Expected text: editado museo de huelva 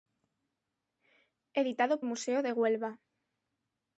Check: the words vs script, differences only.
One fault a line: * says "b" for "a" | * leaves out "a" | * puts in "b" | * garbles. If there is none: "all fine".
all fine